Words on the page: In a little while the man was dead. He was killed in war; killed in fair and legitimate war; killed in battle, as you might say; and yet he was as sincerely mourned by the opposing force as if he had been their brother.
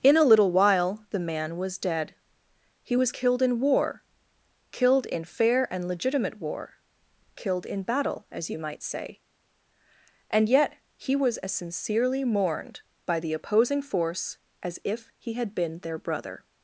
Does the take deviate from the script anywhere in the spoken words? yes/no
no